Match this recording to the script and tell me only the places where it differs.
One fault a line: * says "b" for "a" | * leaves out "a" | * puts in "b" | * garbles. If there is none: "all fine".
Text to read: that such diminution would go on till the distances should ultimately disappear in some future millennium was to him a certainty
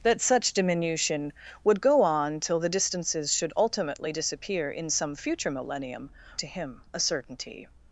* leaves out "was"